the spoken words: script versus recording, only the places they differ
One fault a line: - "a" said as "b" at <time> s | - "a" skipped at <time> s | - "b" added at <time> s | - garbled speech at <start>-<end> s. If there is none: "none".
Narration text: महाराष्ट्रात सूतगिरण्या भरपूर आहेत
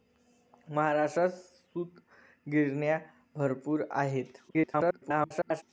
- garbled speech at 4.5-5.6 s